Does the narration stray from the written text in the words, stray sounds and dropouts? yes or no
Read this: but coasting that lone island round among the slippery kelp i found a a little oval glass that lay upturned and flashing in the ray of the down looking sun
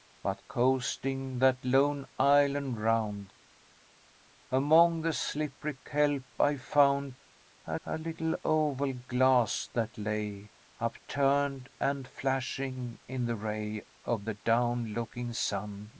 no